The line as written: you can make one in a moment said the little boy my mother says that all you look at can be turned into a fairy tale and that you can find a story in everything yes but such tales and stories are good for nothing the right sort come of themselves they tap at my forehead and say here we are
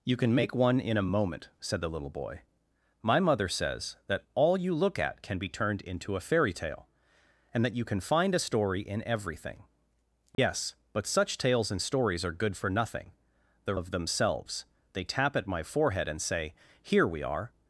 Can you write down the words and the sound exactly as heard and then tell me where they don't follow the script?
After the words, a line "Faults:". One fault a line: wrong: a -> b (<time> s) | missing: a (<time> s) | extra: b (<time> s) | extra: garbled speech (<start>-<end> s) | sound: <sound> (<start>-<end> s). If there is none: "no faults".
you can make one in a moment said the little boy my mother says that all you look at can be turned into a fairy tale and that you can find a story in everything yes but such tales and stories are good for nothing the of themselves they tap at my forehead and say here we are
Faults:
sound: dropout (10.3-10.4 s)
missing: right sort come (13.8 s)